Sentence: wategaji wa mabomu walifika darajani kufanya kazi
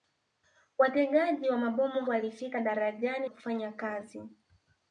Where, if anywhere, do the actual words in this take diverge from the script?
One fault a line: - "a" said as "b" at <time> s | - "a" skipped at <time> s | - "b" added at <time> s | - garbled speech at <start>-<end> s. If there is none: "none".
none